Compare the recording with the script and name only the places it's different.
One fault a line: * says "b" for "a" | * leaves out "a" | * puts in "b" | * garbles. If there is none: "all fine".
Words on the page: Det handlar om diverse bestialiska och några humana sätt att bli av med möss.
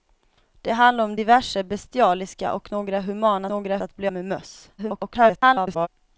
* says "några" for "sätt"
* leaves out "av"
* garbles